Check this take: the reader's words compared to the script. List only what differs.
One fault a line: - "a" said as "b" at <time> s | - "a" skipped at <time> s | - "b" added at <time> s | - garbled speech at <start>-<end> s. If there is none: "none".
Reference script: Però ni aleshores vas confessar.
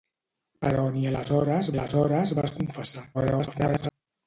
- "aleshores" added at 1.7 s
- garbled speech at 3.1-3.9 s